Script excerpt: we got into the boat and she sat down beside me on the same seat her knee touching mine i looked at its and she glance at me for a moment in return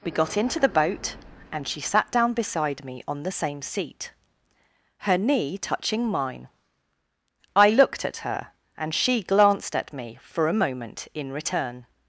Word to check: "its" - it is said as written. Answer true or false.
false